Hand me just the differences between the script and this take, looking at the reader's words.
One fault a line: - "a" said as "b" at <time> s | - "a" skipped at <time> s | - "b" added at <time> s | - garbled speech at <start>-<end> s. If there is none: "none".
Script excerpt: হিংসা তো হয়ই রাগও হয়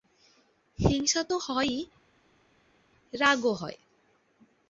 none